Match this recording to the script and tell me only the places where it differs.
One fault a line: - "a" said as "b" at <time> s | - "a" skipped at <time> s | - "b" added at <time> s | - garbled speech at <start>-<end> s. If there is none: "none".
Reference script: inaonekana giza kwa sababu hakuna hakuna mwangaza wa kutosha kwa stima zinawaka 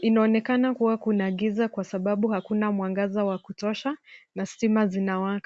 - "kuwa kuna" added at 0.7 s
- "hakuna" skipped at 2.7 s
- "kwa" said as "na" at 4.4 s